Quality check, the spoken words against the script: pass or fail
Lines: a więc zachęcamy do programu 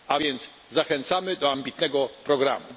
fail